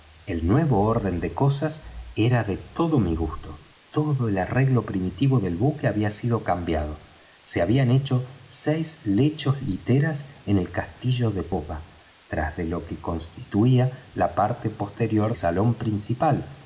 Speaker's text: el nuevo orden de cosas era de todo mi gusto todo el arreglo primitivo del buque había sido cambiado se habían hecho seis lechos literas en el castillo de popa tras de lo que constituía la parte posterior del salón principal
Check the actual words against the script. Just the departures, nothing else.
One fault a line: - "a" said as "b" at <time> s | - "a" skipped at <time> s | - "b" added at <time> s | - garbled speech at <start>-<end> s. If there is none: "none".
- "del" skipped at 15.3 s